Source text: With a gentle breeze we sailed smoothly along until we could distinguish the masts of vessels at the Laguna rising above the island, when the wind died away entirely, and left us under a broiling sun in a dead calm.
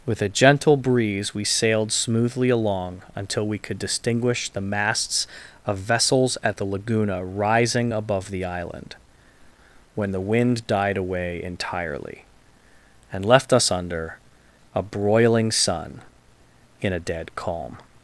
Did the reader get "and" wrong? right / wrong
right